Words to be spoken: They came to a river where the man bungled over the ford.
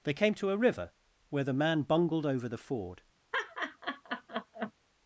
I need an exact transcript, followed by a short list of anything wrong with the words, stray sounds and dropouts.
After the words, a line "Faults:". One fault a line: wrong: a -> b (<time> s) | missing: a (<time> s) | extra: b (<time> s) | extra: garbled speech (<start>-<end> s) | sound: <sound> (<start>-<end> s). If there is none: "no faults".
They came to a river where the man bungled over the ford.
Faults:
sound: laugh (3.3-4.7 s)